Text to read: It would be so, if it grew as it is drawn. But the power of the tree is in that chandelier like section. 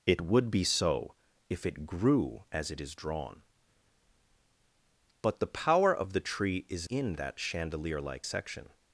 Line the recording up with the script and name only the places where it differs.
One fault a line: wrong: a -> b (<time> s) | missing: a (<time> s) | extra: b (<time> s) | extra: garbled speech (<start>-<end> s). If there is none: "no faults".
no faults